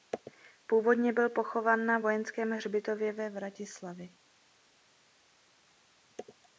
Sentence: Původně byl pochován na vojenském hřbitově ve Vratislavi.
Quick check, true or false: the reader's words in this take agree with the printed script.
true